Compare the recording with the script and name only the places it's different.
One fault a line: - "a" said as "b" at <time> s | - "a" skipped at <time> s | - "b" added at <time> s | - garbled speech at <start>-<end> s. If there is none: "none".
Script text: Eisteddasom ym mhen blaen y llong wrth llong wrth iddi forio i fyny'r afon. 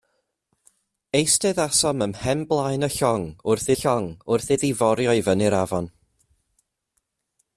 none